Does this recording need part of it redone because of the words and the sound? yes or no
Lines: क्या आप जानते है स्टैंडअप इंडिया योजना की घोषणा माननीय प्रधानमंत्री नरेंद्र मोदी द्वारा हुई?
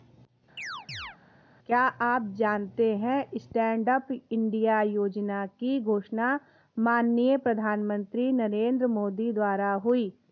yes